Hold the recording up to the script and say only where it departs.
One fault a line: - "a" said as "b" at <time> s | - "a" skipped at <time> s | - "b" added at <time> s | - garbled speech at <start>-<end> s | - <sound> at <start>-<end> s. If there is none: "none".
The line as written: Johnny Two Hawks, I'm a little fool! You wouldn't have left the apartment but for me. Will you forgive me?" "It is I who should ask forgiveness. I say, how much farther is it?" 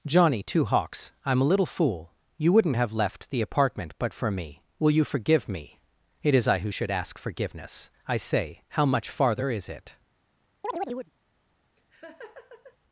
- chirp at 10.6-11.1 s
- laugh at 11.8-12.8 s